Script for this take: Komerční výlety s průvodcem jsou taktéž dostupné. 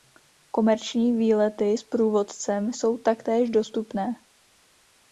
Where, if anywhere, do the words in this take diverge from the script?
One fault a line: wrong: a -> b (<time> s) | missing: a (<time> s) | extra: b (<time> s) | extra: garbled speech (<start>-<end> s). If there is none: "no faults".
no faults